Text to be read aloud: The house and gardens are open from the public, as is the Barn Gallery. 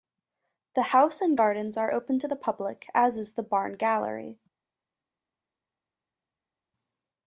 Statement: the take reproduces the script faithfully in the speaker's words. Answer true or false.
false